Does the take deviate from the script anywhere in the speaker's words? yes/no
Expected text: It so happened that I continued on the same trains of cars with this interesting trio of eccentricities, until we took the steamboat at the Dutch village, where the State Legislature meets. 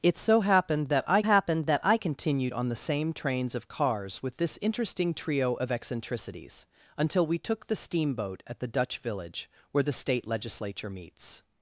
yes